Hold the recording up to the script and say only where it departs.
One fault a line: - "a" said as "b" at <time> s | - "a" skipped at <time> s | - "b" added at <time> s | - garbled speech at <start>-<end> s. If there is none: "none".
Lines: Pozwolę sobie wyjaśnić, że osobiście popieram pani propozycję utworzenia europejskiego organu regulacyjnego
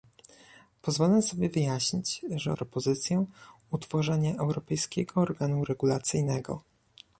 - "osobiście popieram pani" skipped at 2.5 s